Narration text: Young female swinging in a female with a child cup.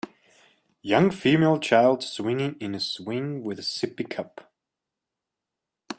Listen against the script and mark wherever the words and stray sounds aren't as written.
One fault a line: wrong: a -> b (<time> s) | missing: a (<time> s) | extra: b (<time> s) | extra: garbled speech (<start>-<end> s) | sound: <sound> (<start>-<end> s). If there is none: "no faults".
extra: child (1.6 s)
wrong: female -> swing (2.8 s)
wrong: child -> sippy (3.6 s)